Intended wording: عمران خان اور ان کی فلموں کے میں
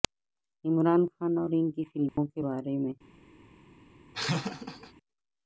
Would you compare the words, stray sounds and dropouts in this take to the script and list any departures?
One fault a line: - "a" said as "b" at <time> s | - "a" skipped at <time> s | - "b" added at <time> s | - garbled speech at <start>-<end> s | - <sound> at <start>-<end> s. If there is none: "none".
- dropout at 2.1-2.2 s
- "بارے" added at 2.4 s
- laugh at 4.1-4.9 s